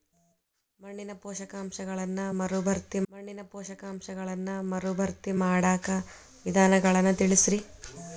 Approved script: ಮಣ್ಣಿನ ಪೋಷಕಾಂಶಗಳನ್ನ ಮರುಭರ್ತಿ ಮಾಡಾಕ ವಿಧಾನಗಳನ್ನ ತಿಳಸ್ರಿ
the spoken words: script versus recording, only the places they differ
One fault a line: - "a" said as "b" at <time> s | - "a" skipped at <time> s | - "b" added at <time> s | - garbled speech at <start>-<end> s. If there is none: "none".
- "ಮಣ್ಣಿನ ಪೋಷಕಾಂಶಗಳನ್ನ ಮರುಭರ್ತಿ" added at 3.1 s